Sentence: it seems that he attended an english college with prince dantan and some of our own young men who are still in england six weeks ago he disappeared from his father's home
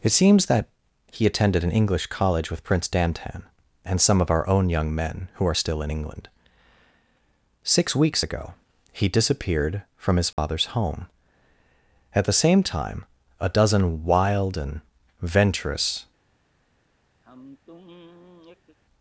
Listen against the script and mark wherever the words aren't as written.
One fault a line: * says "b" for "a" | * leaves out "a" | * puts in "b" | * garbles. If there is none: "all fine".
* puts in "at the same time a dozen wild and venturous"